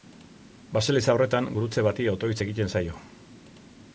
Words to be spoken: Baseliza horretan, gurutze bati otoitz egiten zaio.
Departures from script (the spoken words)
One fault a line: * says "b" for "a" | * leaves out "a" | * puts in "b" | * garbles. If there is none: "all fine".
all fine